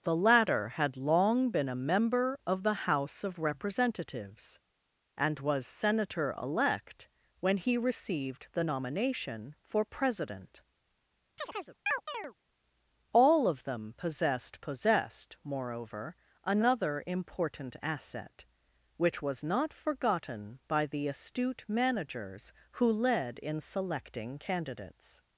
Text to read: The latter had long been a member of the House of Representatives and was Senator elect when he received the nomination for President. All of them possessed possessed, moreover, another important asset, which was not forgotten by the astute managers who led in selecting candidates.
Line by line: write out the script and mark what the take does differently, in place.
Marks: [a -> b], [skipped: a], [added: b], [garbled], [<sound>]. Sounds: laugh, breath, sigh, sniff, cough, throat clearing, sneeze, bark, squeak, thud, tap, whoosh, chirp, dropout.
The latter had long been a member of the House of Representatives and was Senator elect when he received the nomination for President. [chirp] All of them possessed possessed, moreover, another important asset, which was not forgotten by the astute managers who led in selecting candidates.